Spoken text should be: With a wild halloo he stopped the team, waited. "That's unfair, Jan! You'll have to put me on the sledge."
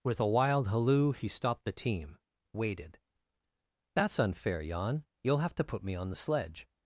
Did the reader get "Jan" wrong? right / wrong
right